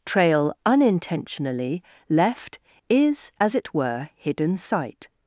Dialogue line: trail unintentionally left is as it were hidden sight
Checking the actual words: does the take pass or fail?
pass